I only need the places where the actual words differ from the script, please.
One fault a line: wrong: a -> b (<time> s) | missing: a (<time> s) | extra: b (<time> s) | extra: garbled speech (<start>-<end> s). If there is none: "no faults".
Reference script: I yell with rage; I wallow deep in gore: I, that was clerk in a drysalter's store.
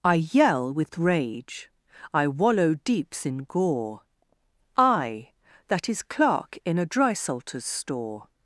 wrong: deep -> deeps (2.7 s)
wrong: was -> is (5.9 s)